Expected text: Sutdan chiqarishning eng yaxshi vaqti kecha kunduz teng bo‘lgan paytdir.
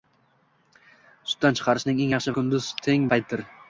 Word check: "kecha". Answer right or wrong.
wrong